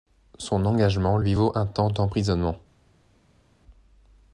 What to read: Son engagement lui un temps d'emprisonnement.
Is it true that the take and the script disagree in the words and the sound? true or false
true